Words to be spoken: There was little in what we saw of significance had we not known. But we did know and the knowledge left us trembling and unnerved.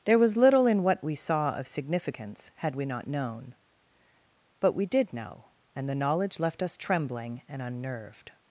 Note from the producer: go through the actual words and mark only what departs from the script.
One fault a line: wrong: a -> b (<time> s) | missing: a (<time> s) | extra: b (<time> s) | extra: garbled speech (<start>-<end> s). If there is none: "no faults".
no faults